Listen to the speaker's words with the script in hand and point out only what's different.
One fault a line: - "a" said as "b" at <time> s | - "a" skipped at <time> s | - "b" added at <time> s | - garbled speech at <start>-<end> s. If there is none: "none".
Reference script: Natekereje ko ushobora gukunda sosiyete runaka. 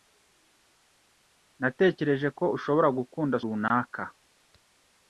- "sosiyete" skipped at 3.4 s